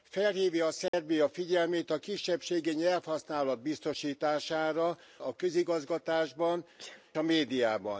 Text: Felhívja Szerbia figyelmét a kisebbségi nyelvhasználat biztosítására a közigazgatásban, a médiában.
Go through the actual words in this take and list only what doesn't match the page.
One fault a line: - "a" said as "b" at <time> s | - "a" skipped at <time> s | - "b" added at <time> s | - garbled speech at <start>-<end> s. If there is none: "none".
none